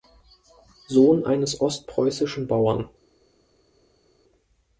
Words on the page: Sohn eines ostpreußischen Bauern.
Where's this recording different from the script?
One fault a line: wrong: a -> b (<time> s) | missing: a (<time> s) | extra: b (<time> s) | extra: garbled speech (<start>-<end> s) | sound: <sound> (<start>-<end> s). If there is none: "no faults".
no faults